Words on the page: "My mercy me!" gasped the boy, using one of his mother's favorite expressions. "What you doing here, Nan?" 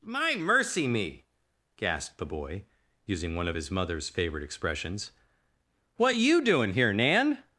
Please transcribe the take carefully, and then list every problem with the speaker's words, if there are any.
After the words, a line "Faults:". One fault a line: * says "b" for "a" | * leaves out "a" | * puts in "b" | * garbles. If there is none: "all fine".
"My mercy me!" gasped the boy, using one of his mother's favorite expressions. "What you doing here, Nan?"
Faults:
all fine